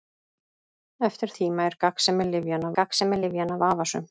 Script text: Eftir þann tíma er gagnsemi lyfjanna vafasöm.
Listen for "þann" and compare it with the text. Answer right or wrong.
wrong